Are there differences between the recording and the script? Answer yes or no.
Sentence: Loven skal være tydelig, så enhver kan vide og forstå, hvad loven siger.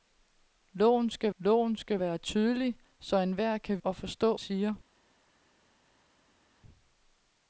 yes